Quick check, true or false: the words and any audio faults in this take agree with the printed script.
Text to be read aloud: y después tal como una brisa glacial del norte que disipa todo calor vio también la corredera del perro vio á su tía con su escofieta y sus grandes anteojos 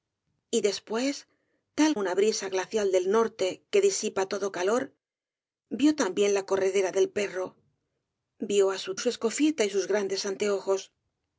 false